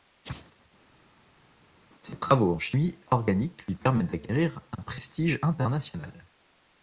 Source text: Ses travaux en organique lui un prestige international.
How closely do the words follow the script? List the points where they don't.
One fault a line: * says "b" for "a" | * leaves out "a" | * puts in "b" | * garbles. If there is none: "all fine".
* puts in "chimie"
* puts in "permettent d'acquérir"